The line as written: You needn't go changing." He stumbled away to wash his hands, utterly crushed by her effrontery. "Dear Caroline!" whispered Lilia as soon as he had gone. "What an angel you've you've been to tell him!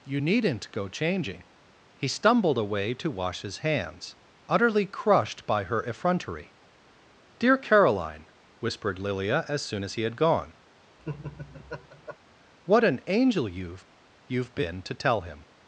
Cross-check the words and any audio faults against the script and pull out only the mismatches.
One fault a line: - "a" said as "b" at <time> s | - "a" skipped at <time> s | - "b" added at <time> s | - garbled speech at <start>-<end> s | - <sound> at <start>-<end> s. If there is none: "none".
- laugh at 11.0-12.2 s